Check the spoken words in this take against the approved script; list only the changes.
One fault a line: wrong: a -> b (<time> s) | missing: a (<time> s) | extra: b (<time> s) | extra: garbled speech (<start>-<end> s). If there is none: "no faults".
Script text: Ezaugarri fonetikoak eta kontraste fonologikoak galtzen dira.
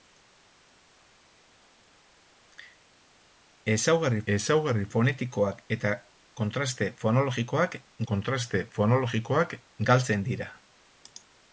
extra: ezaugarri (4.3 s)
extra: kontraste fonologikoak (8.1 s)